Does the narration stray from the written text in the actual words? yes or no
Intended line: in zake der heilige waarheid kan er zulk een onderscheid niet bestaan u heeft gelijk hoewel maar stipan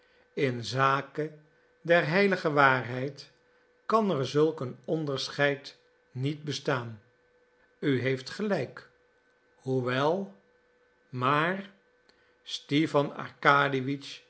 no